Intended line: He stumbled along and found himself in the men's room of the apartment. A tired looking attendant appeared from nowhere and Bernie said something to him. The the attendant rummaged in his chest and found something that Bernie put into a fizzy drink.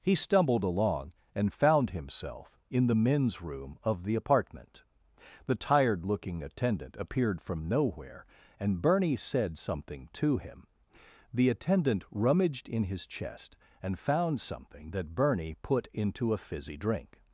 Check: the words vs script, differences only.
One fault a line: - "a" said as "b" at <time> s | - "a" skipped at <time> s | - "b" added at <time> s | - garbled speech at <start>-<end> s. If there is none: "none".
- "A" said as "The" at 5.5 s
- "the" skipped at 11.5 s